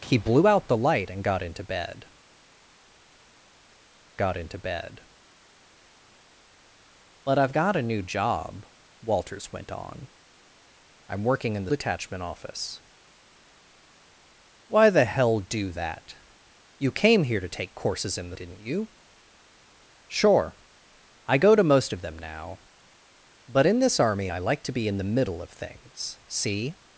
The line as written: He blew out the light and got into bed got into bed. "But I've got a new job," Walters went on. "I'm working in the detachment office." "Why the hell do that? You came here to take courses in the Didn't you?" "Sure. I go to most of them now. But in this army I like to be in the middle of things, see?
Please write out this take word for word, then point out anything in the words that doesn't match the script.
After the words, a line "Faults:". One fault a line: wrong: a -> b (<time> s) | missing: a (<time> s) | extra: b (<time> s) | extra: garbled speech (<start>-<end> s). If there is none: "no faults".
He blew out the light and got into bed got into bed. "But I've got a new job," Walters went on. "I'm working in the detachment office." "Why the hell do that? You came here to take courses in the Didn't you?" "Sure. I go to most of them now. But in this army I like to be in the middle of things, see?
Faults:
no faults